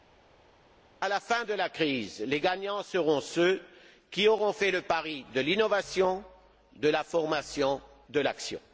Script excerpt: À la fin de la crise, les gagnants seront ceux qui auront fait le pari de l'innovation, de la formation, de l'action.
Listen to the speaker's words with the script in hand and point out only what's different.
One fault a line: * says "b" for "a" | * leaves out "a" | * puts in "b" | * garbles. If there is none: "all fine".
all fine